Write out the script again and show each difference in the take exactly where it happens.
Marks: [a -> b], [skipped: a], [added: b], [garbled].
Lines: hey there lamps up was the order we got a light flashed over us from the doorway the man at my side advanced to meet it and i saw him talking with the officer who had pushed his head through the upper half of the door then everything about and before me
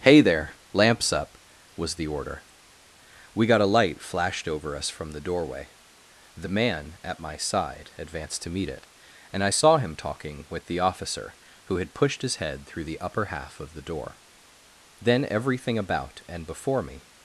hey there lamps up was the order we got a light flashed over us from the doorway the man at my side advanced to meet it and i saw him talking with the officer who had pushed his head through the upper half of the door then everything about and before me